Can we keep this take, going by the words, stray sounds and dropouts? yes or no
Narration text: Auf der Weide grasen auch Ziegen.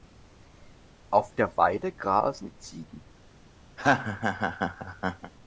no